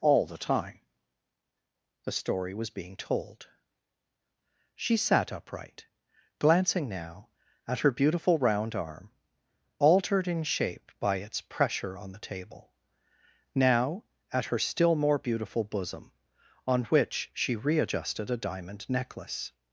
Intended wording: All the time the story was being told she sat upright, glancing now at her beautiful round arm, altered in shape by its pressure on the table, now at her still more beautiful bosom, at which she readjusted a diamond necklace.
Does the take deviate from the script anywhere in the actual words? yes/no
yes